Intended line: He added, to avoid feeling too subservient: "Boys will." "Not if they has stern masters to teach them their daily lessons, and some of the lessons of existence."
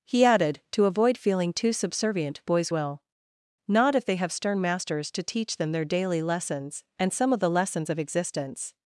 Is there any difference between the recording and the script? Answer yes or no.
yes